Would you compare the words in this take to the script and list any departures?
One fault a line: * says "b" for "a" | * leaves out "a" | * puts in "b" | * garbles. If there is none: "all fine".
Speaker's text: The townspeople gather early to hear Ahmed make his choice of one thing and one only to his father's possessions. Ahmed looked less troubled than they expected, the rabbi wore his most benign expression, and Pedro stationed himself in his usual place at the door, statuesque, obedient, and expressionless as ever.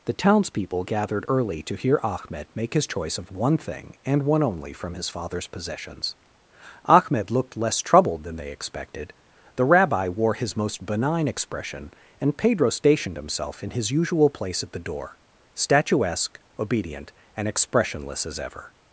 * says "gathered" for "gather"
* says "from" for "to"